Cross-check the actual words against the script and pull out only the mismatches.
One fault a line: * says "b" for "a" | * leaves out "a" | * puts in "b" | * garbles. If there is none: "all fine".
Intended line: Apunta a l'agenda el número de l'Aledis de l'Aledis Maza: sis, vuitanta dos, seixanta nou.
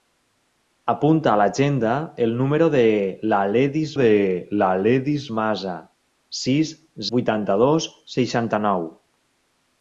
all fine